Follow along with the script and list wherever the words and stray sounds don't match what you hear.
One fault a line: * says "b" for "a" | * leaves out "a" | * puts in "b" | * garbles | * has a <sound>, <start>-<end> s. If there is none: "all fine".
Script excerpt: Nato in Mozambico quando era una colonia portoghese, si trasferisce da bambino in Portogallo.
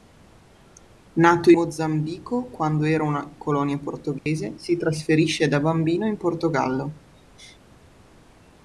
* leaves out "in"
* has a dropout, 4.2-4.3 s